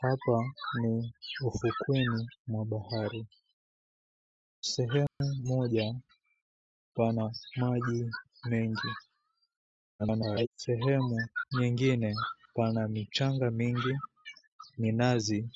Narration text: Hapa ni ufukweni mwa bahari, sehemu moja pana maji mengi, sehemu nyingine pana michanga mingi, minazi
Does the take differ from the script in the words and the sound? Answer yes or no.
yes